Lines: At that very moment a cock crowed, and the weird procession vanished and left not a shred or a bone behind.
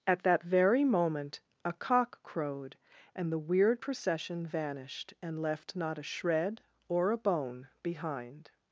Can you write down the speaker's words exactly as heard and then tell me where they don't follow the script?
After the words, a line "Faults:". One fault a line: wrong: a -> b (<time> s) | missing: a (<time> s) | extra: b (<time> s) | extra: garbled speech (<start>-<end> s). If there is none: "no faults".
At that very moment a cock crowed, and the weird procession vanished and left not a shred or a bone behind.
Faults:
no faults